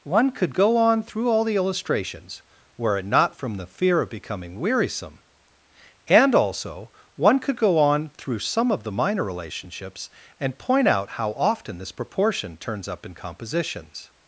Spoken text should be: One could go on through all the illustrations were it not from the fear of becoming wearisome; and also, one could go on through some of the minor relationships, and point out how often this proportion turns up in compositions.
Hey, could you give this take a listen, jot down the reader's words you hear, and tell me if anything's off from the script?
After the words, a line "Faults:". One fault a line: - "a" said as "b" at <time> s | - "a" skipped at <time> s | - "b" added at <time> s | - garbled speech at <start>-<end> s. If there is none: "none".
One could go on through all the illustrations were it not from the fear of becoming wearisome; and also, one could go on through some of the minor relationships, and point out how often this proportion turns up in compositions.
Faults:
none